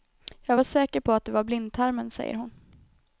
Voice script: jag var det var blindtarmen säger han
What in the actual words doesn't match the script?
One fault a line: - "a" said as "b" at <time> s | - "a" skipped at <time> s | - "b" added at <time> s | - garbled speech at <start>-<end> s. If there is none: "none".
- "säker på att" added at 0.6 s
- "han" said as "hon" at 2.3 s